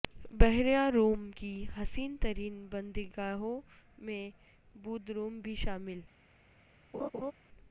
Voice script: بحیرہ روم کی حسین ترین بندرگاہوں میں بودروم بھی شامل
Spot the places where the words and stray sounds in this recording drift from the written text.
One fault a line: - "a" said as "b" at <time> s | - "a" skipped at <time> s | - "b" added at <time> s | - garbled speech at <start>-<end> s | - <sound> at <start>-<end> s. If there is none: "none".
- laugh at 6.9-7.3 s